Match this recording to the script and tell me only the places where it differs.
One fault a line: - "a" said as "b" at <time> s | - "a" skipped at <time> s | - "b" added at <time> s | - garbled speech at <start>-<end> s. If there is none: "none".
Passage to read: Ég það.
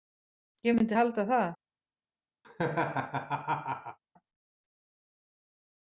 - "myndi halda" added at 0.8 s